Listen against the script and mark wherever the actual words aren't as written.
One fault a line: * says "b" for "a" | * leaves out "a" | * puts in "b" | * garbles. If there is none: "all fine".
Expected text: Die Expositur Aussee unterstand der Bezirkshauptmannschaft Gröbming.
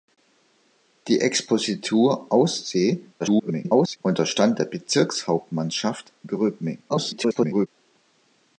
* garbles
* garbles